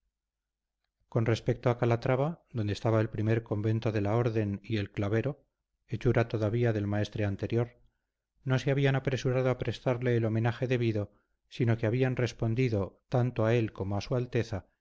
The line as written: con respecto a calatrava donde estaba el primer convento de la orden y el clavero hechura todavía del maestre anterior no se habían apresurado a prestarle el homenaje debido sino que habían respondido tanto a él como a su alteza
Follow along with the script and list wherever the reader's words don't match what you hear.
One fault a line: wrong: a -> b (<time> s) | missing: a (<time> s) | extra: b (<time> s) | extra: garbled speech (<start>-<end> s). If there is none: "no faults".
no faults